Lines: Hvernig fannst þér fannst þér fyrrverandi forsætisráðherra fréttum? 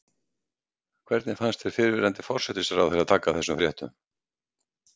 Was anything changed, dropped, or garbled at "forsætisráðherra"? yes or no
yes